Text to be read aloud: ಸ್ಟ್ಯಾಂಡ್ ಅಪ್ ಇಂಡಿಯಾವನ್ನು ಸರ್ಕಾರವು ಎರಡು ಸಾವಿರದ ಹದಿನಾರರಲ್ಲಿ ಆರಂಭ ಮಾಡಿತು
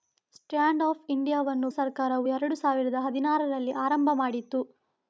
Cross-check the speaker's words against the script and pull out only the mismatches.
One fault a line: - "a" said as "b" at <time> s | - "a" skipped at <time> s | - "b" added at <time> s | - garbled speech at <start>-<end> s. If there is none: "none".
none